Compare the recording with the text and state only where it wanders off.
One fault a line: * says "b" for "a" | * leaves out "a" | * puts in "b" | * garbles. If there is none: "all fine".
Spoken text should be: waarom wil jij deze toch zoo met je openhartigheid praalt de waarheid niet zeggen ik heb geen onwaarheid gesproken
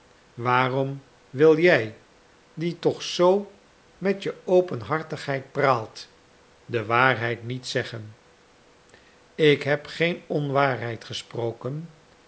* says "die" for "deze"